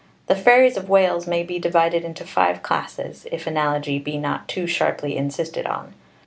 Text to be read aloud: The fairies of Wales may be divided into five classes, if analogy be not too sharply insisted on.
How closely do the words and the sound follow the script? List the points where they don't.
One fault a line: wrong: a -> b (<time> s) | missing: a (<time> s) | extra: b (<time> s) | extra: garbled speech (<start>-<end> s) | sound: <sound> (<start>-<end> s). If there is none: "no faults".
no faults